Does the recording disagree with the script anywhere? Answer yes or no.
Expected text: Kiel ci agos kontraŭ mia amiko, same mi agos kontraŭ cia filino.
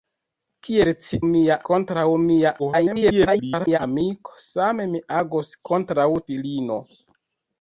yes